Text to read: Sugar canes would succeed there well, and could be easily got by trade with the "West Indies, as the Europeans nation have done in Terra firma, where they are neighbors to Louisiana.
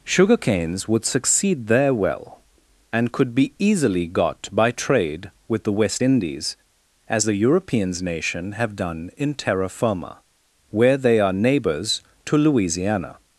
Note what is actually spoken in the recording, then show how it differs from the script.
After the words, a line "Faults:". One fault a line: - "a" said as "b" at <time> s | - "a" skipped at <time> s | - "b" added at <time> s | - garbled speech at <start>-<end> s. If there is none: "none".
Sugar canes would succeed there well, and could be easily got by trade with the "West Indies, as the Europeans nation have done in Terra firma, where they are neighbors to Louisiana.
Faults:
none